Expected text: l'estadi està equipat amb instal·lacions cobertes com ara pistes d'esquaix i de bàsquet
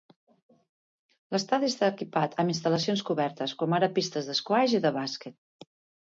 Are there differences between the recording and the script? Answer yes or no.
no